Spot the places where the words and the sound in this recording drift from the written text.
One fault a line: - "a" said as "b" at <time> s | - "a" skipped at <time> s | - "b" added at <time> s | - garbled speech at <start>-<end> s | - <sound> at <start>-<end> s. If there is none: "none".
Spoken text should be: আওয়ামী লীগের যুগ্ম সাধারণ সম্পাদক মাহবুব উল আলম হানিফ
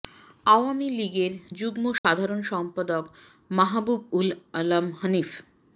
- dropout at 2.0-2.0 s